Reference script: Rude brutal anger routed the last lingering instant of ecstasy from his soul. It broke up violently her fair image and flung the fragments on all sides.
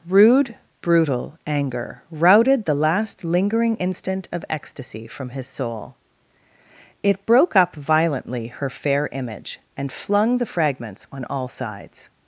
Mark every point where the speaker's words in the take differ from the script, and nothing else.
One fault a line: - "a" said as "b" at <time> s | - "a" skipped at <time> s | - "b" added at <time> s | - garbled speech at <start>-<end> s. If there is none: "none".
none